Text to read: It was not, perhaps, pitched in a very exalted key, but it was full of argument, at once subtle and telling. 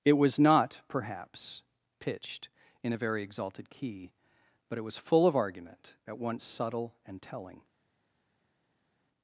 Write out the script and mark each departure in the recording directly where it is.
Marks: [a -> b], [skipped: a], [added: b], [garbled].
It was not, perhaps, pitched in a very exalted key, but it was full of argument, at once subtle and telling.